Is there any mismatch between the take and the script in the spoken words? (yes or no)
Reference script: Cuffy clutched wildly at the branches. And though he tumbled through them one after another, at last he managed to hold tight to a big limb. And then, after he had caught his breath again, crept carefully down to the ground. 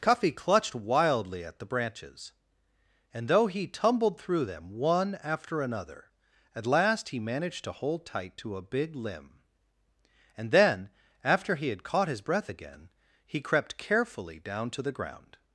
yes